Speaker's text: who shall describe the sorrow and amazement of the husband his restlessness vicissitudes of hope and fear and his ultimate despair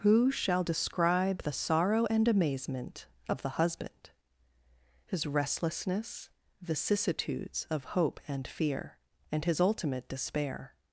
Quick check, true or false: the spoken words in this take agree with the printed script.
true